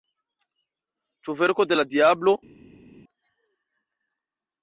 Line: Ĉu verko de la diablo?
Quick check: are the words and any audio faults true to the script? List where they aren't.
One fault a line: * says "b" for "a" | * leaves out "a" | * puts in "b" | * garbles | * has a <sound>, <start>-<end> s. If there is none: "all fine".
all fine